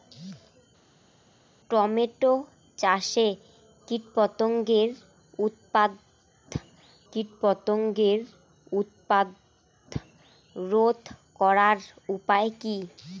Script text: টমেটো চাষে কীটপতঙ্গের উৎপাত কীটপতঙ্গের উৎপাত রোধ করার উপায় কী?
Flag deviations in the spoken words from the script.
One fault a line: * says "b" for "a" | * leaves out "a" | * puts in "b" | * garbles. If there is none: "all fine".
all fine